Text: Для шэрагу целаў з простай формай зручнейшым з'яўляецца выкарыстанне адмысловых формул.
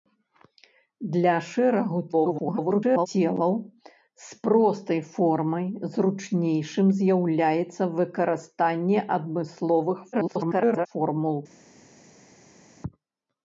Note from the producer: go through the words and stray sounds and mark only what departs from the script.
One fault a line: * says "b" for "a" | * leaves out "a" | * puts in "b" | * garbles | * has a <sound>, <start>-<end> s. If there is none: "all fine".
* garbles
* garbles